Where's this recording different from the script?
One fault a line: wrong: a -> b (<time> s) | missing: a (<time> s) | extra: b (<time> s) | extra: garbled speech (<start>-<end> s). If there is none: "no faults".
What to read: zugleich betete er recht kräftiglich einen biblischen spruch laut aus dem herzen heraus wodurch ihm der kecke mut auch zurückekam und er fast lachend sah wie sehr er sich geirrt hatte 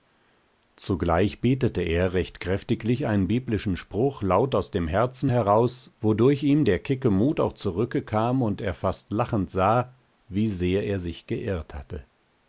no faults